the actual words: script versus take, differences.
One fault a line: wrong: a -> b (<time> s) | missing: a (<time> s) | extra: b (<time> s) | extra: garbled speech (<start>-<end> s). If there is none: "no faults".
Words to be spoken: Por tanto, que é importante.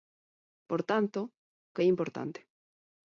no faults